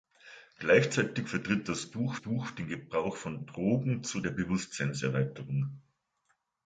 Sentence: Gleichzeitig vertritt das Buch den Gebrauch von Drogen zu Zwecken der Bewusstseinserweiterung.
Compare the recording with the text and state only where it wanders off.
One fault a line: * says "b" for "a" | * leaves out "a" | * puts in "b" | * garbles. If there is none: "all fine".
* puts in "Buch"
* leaves out "Zwecken"